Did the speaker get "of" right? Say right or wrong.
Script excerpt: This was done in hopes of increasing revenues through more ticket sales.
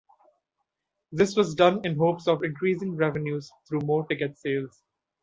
right